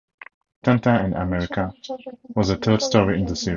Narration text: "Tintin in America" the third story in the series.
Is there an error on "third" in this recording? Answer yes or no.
no